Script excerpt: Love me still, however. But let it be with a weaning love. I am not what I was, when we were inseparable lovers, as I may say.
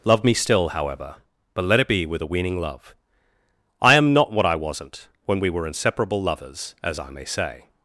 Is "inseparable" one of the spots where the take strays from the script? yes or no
no